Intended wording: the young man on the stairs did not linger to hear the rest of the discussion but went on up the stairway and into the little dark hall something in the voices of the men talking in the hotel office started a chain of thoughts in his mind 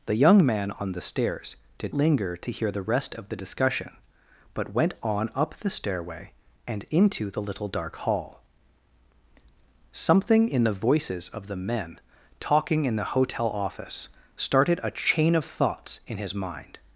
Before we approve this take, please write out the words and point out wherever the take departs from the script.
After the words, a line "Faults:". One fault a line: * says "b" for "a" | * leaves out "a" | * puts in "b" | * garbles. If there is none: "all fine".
the young man on the stairs did linger to hear the rest of the discussion but went on up the stairway and into the little dark hall something in the voices of the men talking in the hotel office started a chain of thoughts in his mind
Faults:
* leaves out "not"